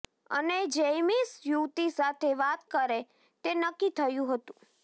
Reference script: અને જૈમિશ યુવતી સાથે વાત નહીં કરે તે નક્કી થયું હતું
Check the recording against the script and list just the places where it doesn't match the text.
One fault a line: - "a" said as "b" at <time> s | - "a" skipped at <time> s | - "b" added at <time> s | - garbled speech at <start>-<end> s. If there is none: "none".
- "નહીં" skipped at 2.6 s